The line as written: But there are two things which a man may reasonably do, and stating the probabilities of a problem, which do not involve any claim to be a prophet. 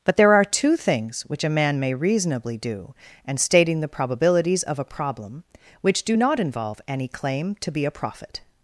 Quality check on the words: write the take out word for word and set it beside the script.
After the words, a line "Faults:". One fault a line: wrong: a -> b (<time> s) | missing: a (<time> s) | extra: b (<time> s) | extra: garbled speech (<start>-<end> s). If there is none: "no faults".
But there are two things which a man may reasonably do, and stating the probabilities of a problem, which do not involve any claim to be a prophet.
Faults:
no faults